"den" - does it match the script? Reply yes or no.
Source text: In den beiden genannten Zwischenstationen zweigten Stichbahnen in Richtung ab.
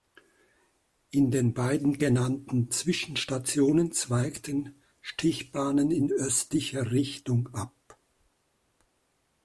yes